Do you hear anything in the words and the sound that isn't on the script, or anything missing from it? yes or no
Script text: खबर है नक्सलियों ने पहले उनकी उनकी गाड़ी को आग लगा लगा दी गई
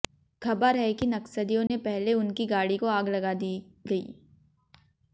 yes